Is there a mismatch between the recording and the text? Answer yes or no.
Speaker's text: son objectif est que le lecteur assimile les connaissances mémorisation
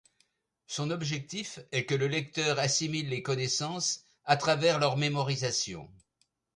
yes